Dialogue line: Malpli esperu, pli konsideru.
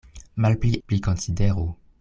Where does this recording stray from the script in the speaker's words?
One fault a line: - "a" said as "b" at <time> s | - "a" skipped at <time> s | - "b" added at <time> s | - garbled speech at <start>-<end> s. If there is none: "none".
- "esperu" skipped at 0.7 s